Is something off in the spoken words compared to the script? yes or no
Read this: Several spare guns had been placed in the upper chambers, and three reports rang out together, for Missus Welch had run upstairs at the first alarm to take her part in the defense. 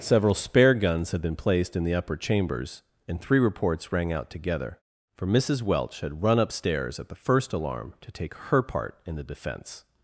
no